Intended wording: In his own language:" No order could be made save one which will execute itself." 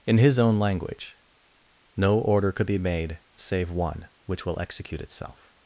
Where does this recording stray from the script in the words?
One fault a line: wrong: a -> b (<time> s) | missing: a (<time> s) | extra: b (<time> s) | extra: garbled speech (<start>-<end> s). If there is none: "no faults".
no faults